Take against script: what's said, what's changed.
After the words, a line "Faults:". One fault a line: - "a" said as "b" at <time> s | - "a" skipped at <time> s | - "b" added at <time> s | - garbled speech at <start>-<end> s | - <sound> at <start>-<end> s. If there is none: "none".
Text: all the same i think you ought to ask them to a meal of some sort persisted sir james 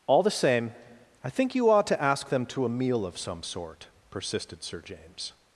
all the same i think you ought to ask them to a meal of some sort persisted sir james
Faults:
none